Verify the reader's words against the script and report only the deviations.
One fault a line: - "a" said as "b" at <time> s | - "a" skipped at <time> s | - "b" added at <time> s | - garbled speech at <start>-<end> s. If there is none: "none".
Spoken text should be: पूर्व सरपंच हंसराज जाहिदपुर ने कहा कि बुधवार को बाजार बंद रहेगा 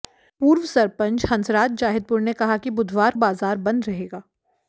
- "को" skipped at 3.1 s